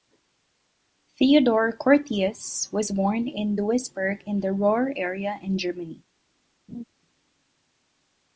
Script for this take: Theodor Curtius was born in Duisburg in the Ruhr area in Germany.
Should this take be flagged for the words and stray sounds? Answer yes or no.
yes